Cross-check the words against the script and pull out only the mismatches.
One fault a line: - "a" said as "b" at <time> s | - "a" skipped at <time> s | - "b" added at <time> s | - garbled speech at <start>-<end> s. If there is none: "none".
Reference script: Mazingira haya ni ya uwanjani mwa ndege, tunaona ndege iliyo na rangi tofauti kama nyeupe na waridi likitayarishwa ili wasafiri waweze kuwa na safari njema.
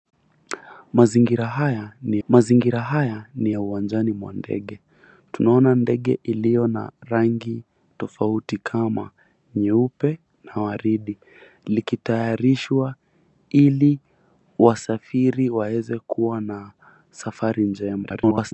- "mazingira haya ni" added at 2.3 s
- garbled speech at 18.0-18.5 s